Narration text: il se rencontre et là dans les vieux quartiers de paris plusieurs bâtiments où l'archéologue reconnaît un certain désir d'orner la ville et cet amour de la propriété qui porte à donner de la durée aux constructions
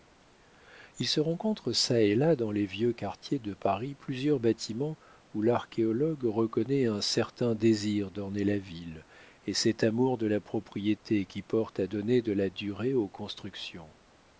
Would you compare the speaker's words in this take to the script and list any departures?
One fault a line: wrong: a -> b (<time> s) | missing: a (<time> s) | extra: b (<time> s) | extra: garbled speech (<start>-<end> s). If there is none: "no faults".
extra: çà (1.7 s)